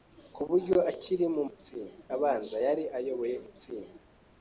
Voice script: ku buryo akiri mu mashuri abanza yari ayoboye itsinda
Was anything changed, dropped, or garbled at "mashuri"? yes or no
yes